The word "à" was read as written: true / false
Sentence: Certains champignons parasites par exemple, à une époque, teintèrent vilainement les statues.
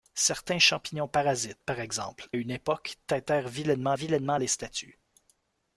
false